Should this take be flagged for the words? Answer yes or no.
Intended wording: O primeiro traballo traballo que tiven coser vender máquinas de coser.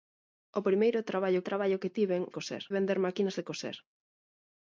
no